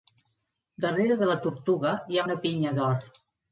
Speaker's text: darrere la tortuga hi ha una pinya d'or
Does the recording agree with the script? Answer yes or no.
no